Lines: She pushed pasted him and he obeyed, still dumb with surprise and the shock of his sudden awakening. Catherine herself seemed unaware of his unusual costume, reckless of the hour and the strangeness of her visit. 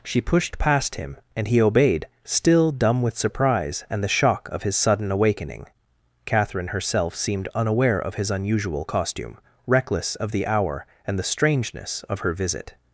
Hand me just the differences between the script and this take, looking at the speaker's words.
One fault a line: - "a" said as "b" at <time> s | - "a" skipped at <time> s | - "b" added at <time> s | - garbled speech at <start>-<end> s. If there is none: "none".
- "pasted" said as "past" at 0.6 s